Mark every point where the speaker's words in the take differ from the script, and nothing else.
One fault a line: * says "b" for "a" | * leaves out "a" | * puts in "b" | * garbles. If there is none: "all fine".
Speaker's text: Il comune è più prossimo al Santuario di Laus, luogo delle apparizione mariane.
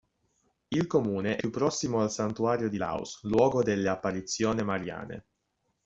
all fine